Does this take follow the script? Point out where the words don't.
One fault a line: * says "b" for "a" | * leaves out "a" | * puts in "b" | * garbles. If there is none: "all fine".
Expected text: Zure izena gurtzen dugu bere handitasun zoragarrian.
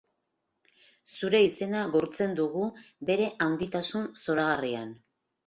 all fine